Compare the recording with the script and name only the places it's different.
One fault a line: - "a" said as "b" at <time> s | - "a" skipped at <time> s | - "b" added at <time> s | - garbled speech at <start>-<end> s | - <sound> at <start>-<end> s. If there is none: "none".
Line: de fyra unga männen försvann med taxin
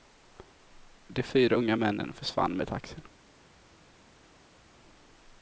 none